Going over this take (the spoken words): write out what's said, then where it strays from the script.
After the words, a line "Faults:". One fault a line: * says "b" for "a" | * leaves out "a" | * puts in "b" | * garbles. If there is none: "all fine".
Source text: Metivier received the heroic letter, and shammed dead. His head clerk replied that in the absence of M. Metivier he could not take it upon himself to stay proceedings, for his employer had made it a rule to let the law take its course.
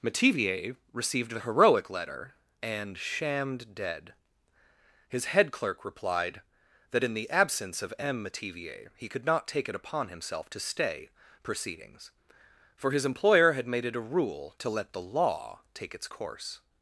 Metivier received the heroic letter, and shammed dead. His head clerk replied that in the absence of M. Metivier he could not take it upon himself to stay proceedings, for his employer had made it a rule to let the law take its course.
Faults:
all fine